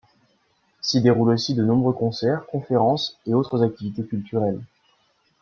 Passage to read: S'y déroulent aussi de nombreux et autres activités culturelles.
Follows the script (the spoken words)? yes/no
no